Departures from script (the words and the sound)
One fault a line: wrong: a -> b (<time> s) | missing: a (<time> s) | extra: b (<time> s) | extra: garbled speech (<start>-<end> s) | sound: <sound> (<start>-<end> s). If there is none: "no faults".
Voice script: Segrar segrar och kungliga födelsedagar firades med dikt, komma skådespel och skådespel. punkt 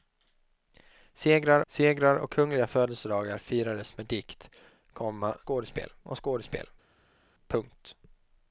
no faults